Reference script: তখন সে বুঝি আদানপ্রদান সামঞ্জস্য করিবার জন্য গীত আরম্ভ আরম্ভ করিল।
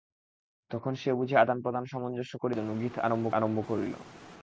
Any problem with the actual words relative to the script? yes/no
no